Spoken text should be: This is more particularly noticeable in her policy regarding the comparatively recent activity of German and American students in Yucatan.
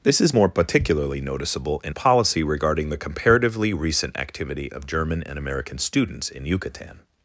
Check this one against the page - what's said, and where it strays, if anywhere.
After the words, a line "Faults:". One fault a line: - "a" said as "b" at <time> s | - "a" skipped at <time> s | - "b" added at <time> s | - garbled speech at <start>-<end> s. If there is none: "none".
This is more particularly noticeable in policy regarding the comparatively recent activity of German and American students in Yucatan.
Faults:
- "her" skipped at 1.9 s